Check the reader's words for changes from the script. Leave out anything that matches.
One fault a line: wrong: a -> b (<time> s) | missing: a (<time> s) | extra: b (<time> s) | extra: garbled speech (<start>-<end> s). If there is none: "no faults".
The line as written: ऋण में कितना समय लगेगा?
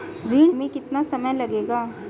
no faults